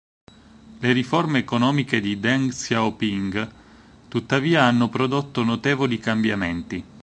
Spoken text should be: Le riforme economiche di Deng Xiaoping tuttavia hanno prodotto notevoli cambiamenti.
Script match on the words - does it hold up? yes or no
yes